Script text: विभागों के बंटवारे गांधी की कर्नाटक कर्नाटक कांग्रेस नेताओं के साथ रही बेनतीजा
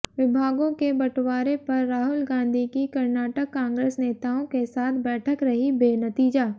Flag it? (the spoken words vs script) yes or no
yes